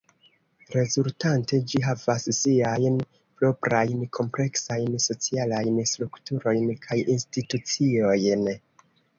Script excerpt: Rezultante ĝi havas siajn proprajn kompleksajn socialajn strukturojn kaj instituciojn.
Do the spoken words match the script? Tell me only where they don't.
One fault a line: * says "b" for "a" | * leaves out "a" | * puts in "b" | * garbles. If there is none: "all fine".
all fine